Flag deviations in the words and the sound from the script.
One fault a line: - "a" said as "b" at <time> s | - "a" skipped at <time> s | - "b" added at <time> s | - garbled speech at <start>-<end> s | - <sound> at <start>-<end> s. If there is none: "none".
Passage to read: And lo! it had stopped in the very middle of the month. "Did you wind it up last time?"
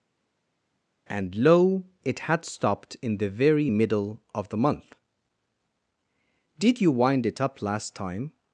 none